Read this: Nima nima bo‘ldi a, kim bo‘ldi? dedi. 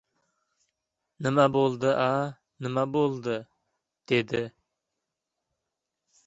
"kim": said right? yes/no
no